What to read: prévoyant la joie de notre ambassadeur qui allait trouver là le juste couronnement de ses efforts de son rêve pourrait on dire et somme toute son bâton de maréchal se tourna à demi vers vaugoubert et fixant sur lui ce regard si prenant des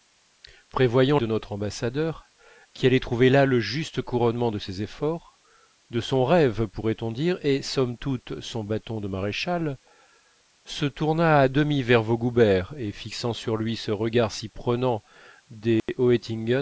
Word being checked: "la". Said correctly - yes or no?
no